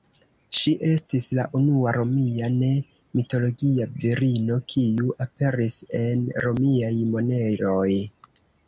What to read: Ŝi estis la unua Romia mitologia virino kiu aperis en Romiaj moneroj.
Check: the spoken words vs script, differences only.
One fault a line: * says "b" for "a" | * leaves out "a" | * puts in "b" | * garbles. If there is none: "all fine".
* puts in "ne"